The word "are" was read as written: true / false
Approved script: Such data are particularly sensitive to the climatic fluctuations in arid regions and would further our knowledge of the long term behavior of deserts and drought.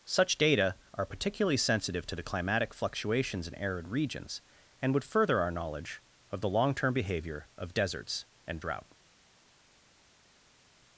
true